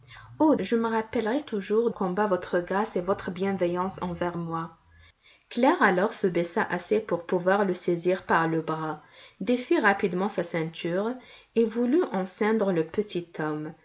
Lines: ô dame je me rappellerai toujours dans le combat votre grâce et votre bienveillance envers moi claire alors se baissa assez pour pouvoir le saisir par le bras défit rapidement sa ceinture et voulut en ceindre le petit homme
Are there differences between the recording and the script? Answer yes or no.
yes